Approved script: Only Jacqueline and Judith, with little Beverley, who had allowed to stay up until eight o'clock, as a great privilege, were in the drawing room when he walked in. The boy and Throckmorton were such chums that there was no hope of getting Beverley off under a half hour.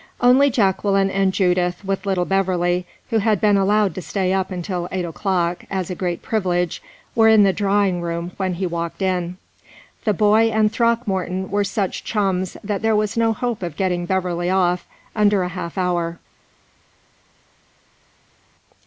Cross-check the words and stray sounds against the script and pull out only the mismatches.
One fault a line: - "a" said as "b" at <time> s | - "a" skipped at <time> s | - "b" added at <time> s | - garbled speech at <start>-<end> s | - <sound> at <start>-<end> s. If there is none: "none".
- "been" added at 3.4 s